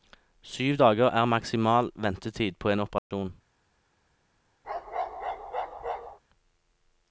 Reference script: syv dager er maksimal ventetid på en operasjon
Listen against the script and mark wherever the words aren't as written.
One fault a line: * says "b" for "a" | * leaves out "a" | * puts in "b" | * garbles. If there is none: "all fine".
all fine